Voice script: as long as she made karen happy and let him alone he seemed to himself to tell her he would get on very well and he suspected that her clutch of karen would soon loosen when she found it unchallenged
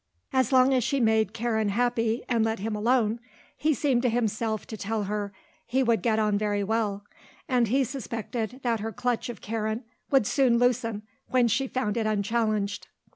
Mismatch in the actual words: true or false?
false